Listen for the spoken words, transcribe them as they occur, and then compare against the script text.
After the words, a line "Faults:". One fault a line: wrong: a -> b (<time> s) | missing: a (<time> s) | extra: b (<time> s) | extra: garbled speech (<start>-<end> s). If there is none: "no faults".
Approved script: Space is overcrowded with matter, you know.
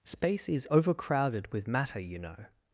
Space is overcrowded with matter, you know.
Faults:
no faults